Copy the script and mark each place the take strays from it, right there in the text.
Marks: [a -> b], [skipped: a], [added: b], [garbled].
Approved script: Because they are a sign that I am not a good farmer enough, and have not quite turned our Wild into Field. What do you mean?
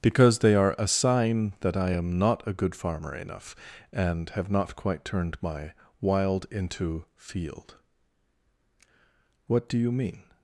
Because they are a sign that I am not a good farmer enough, and have not quite turned [our -> my] Wild into Field. What do you mean?